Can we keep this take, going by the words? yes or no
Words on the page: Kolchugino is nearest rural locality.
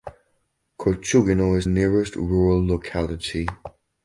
yes